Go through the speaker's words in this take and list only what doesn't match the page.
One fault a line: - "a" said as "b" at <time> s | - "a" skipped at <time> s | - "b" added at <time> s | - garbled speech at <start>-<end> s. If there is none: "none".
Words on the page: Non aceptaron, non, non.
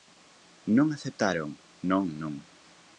none